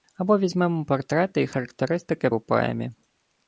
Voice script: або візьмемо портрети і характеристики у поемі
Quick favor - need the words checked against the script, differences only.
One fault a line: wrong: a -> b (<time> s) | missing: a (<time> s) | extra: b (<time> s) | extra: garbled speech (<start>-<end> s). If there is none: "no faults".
no faults